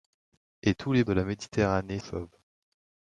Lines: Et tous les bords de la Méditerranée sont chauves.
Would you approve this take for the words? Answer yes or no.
no